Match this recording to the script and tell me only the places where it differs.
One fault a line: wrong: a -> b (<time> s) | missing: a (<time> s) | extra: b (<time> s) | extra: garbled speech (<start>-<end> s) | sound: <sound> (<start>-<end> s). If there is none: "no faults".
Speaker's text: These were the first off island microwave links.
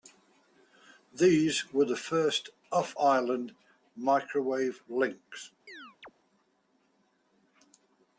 sound: chirp (5.7-6.1 s)